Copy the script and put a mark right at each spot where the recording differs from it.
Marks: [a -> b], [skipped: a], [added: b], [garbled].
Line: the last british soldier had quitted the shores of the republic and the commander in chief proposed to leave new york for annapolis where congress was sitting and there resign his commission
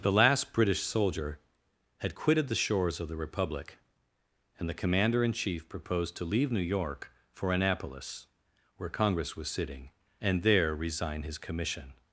the last british soldier had quitted the shores of the republic and the commander in chief proposed to leave new york for annapolis where congress was sitting and there resign his commission